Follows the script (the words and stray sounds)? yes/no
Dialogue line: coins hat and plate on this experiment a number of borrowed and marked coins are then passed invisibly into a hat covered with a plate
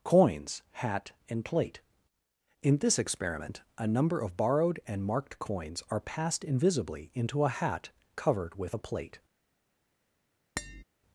no